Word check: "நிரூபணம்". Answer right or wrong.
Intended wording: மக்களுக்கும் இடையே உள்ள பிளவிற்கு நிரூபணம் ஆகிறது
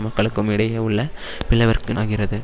wrong